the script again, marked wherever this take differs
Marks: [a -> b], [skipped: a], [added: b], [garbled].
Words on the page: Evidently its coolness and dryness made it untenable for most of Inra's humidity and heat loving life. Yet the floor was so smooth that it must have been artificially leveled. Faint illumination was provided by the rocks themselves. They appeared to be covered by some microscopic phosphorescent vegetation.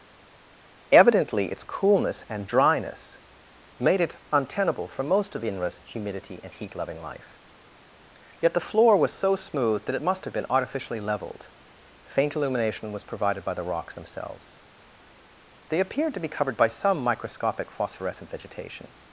Evidently its coolness and dryness made it untenable for most of Inra's humidity and heat loving life. Yet the floor was so smooth that it must have been artificially leveled. Faint illumination was provided by the rocks themselves. They appeared to be covered by some microscopic phosphorescent vegetation.